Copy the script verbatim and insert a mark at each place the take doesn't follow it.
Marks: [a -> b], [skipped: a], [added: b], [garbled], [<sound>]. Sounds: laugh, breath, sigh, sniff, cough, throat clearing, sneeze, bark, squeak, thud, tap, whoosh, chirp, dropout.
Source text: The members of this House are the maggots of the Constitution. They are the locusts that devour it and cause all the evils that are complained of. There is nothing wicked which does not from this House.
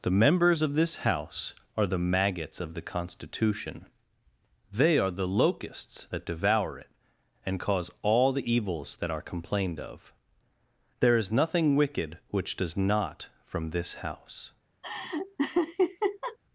The members of this House are the maggots of the Constitution. They are the locusts that devour it and cause all the evils that are complained of. There is nothing wicked which does not from this House. [laugh]